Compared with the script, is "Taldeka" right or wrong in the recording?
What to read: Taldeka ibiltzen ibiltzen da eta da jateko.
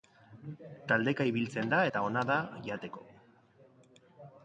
right